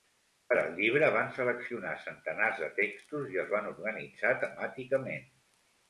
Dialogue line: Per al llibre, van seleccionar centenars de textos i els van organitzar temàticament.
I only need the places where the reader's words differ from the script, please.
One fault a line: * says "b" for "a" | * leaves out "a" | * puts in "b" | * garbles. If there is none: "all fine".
all fine